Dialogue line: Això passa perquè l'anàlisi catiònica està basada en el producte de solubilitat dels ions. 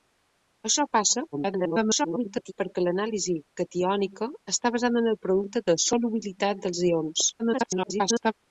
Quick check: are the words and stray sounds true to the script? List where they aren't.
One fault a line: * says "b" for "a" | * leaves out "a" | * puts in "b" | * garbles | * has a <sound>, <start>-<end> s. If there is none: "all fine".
* garbles
* garbles